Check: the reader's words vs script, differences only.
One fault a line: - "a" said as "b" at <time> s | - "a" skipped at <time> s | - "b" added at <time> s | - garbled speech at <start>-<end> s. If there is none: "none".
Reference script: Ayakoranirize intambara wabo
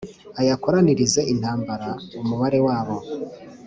- "umubare" added at 2.2 s